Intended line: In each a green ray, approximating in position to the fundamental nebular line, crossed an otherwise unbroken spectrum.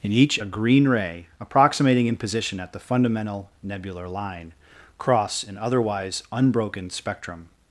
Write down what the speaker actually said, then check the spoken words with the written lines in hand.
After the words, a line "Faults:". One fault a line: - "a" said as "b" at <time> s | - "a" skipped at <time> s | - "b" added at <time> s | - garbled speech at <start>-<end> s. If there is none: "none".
In each a green ray, approximating in position at the fundamental nebular line, cross an otherwise unbroken spectrum.
Faults:
- "to" said as "at" at 2.6 s
- "crossed" said as "cross" at 5.0 s